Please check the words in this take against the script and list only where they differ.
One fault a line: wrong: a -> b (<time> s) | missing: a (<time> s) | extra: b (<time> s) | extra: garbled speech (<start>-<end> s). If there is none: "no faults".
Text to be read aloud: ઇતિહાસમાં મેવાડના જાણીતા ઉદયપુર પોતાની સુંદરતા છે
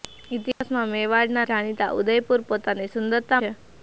no faults